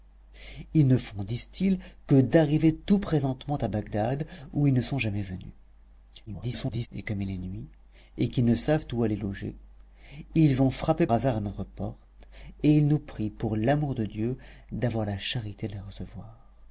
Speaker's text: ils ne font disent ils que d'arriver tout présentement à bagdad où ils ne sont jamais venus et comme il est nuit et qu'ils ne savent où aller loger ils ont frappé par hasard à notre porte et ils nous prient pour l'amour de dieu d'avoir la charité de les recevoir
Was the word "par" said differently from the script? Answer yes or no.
yes